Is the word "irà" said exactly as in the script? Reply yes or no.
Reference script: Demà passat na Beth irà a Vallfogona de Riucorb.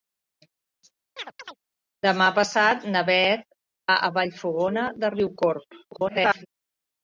no